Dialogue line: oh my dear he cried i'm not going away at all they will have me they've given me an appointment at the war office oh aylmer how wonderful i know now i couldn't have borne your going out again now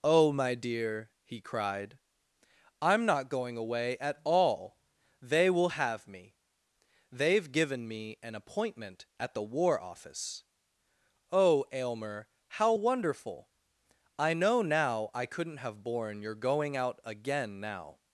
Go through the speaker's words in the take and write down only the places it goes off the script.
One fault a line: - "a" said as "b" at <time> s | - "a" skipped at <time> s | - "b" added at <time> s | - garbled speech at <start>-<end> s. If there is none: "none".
none